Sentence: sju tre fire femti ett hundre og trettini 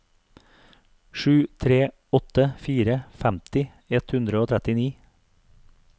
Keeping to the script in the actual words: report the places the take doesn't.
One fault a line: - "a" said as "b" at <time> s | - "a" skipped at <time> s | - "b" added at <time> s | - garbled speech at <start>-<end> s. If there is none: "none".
- "åtte" added at 2.1 s